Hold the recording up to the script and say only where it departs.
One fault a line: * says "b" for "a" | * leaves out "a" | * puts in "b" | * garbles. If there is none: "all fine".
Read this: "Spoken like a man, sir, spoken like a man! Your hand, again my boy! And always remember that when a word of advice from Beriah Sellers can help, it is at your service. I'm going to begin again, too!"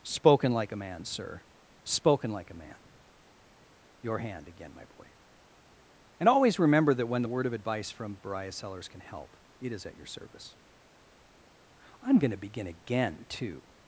* says "the" for "a"